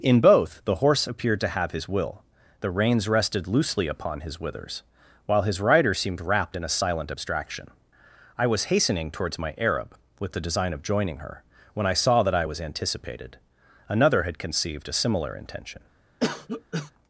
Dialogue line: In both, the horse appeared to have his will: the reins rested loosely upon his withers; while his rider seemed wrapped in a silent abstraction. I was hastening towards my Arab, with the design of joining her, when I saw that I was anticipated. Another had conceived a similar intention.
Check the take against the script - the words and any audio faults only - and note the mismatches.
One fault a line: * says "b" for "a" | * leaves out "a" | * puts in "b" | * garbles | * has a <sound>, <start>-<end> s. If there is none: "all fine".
* has a cough, 16.2-16.9 s